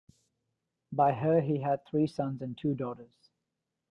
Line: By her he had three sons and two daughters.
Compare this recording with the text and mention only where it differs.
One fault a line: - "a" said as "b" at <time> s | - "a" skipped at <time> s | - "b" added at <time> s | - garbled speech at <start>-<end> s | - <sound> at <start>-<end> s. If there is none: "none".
none